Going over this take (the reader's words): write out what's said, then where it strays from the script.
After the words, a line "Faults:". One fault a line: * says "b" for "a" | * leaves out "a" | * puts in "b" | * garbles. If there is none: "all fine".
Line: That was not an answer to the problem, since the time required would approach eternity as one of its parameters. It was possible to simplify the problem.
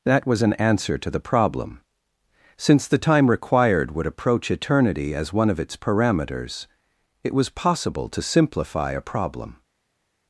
That was an answer to the problem, since the time required would approach eternity as one of its parameters. It was possible to simplify a problem.
Faults:
* leaves out "not"
* says "a" for "the"